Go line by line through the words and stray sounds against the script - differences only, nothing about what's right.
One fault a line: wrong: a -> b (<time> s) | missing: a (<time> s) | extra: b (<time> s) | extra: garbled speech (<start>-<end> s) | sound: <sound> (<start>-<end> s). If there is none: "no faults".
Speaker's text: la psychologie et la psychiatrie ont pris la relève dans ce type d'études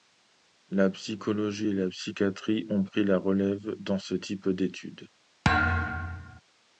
sound: thud (5.4-6.4 s)